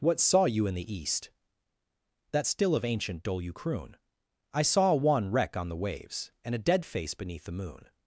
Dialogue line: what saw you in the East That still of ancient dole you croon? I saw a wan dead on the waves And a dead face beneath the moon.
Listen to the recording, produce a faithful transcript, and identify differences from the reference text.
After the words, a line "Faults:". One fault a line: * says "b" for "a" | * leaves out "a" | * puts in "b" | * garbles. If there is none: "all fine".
what saw you in the East That still of ancient dole you croon? I saw a wan wreck on the waves And a dead face beneath the moon.
Faults:
* says "wreck" for "dead"